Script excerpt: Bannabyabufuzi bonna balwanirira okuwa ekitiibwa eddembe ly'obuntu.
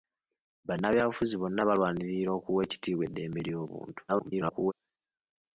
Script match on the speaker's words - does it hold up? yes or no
no